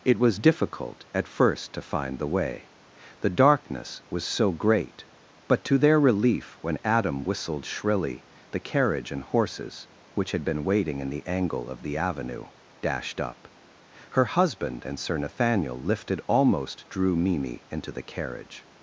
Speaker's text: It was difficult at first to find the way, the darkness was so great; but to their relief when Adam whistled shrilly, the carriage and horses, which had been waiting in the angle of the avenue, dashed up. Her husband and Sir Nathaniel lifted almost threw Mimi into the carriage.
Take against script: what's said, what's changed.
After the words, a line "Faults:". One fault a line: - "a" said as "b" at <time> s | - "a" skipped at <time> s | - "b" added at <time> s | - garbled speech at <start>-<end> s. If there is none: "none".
It was difficult at first to find the way, the darkness was so great; but to their relief when Adam whistled shrilly, the carriage and horses, which had been waiting in the angle of the avenue, dashed up. Her husband and Sir Nathaniel lifted almost drew Mimi into the carriage.
Faults:
- "threw" said as "drew" at 16.9 s